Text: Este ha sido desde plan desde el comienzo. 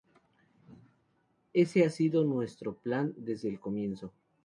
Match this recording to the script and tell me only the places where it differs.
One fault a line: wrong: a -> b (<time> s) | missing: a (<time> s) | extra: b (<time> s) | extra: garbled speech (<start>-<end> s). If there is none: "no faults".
wrong: Este -> Ese (1.5 s)
wrong: desde -> nuestro (2.2 s)